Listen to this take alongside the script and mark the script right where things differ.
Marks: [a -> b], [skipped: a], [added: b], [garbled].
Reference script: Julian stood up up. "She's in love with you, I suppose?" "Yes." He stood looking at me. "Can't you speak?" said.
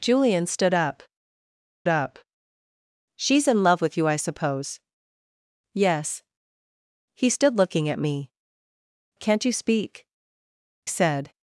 Julian stood up up. "She's in love with you, I suppose?" "Yes." He stood looking at me. "Can't you speak?" said.